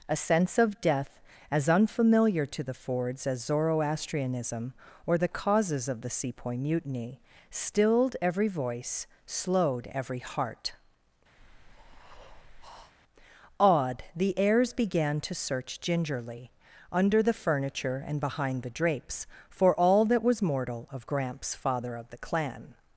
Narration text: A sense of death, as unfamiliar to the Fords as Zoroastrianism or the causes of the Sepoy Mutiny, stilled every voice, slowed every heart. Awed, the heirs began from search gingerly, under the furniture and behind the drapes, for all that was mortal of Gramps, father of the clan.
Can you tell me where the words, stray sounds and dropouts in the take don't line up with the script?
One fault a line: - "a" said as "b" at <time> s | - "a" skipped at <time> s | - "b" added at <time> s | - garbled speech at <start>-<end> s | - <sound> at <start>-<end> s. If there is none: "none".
- breath at 11.4-12.9 s
- "from" said as "to" at 15.2 s